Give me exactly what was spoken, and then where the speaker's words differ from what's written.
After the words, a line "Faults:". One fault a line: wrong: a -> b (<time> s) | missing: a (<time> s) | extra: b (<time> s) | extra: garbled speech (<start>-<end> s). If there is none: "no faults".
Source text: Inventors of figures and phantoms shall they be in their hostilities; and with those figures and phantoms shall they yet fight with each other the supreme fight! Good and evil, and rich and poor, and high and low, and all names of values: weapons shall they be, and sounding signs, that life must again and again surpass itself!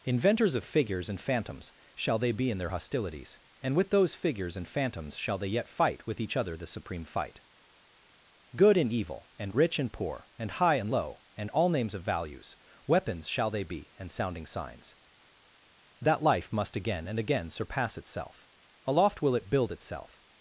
Inventors of figures and phantoms shall they be in their hostilities; and with those figures and phantoms shall they yet fight with each other the supreme fight! Good and evil, and rich and poor, and high and low, and all names of values: weapons shall they be, and sounding signs, that life must again and again surpass itself! Aloft will it build itself
Faults:
extra: Aloft will it build itself (18.8 s)